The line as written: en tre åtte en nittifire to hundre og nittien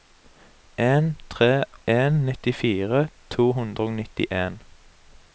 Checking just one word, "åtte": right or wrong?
wrong